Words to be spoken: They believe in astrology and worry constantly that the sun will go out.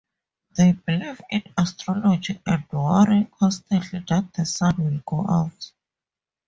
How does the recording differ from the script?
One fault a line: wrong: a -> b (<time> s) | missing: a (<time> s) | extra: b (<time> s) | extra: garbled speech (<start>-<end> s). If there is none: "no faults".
no faults